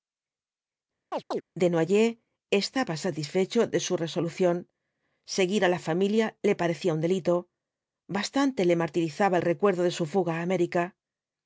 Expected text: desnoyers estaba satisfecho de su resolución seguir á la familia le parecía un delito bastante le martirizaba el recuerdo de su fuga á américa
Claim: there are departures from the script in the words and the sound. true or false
true